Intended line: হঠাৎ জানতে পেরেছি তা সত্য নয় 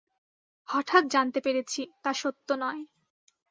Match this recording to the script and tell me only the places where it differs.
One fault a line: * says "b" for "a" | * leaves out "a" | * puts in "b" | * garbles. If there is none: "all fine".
all fine